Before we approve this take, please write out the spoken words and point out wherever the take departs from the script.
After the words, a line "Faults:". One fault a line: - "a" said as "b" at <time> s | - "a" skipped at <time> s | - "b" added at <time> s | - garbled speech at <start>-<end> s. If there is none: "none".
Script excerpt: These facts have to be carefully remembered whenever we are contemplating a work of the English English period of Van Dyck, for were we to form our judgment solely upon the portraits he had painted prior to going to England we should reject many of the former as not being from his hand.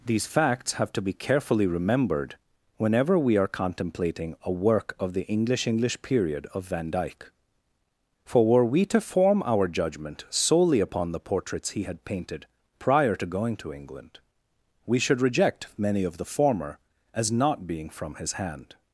These facts have to be carefully remembered whenever we are contemplating a work of the English English period of Van Dyck, for were we to form our judgment solely upon the portraits he had painted prior to going to England we should reject many of the former as not being from his hand.
Faults:
none